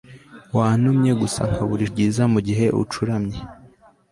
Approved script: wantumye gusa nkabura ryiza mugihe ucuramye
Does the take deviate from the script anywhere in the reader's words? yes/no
no